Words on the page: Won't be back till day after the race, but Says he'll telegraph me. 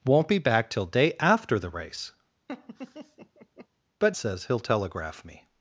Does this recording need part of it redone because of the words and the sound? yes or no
yes